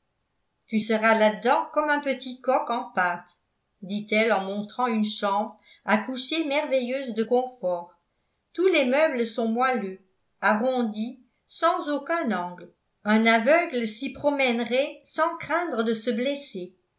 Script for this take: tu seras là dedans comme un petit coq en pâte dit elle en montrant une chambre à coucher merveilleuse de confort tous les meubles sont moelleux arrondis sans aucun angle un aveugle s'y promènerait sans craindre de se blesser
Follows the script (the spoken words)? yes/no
yes